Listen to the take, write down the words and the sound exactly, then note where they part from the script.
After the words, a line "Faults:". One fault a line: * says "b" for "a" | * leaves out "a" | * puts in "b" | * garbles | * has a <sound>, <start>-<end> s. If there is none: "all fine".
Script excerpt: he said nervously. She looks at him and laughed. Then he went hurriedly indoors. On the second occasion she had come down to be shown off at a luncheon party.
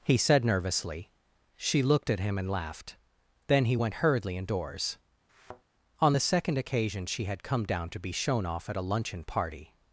he said nervously. She looked at him and laughed. Then he went hurriedly indoors. On the second occasion she had come down to be shown off at a luncheon party.
Faults:
* says "looked" for "looks"
* has a thud, 5.3-5.6 s